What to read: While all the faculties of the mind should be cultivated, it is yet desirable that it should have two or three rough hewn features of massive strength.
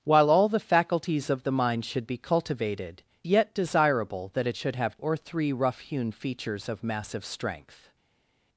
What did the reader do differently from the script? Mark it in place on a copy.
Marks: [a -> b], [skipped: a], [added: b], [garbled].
While all the faculties of the mind should be cultivated, [skipped: it is] yet desirable that it should have [skipped: two] or three rough hewn features of massive strength.